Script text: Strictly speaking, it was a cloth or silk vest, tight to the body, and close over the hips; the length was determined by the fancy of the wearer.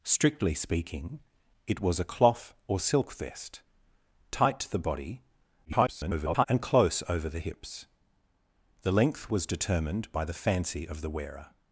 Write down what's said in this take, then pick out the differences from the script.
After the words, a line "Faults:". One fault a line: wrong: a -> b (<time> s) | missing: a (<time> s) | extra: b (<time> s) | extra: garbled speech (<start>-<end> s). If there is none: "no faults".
Strictly speaking, it was a cloth or silk vest, tight to the body, [garbled] and close over the hips; the length was determined by the fancy of the wearer.
Faults:
extra: garbled speech (5.6-6.5 s)